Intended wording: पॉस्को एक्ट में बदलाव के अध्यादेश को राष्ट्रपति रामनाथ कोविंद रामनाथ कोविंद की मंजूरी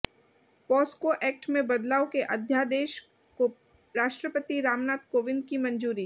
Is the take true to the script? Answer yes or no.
no